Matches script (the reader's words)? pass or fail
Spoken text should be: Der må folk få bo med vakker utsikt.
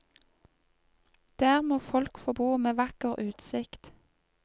pass